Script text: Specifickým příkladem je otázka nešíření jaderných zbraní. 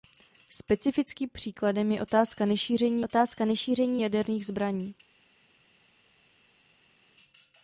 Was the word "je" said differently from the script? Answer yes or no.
no